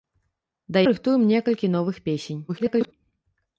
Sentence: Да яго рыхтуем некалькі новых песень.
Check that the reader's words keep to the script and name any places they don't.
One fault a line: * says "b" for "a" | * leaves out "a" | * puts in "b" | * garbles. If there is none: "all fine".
* leaves out "яго"
* garbles